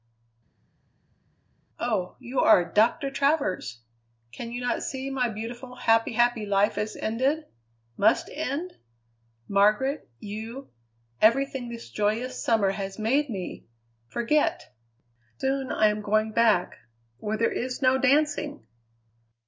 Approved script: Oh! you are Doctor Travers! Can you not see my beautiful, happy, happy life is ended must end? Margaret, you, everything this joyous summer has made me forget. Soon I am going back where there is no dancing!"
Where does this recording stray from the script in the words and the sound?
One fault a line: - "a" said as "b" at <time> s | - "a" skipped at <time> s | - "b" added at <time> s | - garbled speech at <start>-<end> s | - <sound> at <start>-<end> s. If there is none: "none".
none